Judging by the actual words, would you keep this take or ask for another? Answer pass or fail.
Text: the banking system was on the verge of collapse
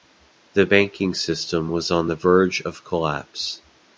pass